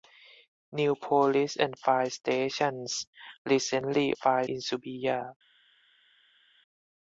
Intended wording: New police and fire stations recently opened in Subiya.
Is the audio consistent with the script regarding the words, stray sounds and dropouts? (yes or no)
no